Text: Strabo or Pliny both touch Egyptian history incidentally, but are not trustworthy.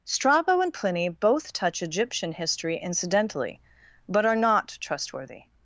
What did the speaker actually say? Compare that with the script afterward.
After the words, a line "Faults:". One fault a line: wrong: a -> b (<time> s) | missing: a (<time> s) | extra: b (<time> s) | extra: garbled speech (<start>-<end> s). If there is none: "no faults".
Strabo and Pliny both touch Egyptian history incidentally, but are not trustworthy.
Faults:
wrong: or -> and (0.6 s)